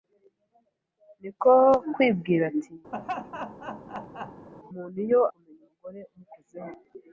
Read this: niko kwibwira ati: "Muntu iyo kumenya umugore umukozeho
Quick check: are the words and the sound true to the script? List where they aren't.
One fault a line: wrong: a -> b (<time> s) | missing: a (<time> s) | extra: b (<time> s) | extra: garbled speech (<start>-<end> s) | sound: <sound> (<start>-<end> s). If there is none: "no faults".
sound: laugh (2.9-4.5 s)